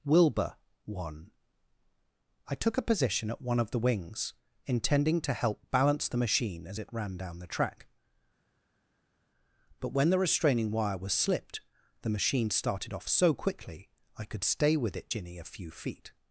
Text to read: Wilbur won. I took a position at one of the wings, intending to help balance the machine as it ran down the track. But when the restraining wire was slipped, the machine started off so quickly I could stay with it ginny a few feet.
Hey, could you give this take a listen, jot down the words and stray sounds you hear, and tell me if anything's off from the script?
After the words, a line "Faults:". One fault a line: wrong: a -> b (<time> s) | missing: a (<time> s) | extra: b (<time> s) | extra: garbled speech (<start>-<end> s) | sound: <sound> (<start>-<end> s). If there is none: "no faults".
Wilbur won. I took a position at one of the wings, intending to help balance the machine as it ran down the track. But when the restraining wire was slipped, the machine started off so quickly I could stay with it ginny a few feet.
Faults:
no faults